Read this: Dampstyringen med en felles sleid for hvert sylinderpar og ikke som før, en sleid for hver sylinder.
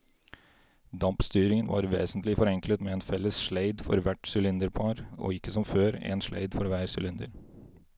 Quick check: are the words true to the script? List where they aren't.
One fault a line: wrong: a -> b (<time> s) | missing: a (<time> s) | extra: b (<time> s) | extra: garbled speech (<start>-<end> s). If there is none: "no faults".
extra: var vesentlig forenklet (1.7 s)